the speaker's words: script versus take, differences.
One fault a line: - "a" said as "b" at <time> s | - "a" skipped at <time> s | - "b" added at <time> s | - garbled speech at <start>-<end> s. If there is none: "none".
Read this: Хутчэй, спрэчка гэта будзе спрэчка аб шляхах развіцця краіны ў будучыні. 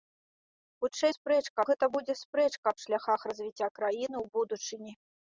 none